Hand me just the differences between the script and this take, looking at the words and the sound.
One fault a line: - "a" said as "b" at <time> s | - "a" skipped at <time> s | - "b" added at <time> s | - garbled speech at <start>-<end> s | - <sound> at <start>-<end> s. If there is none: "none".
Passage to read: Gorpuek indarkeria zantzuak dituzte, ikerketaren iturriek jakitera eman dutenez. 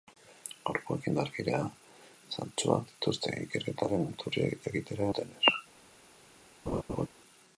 - "eman" skipped at 5.1 s
- laugh at 6.7-7.1 s